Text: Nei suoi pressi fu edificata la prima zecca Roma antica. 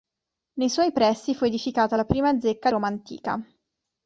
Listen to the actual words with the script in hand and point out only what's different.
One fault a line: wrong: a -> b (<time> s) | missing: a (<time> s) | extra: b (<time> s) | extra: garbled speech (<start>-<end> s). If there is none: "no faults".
no faults